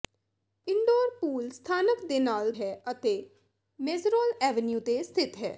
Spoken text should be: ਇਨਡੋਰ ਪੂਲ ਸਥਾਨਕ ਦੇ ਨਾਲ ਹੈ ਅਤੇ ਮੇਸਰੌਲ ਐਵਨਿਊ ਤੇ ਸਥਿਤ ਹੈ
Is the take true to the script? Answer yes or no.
yes